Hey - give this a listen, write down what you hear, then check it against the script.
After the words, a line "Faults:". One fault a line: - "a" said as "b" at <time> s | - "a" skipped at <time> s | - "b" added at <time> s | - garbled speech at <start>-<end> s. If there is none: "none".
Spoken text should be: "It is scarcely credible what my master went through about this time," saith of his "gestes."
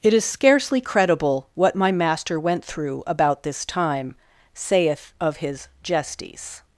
"It is scarcely credible what my master went through about this time," saith of his "gestes."
Faults:
none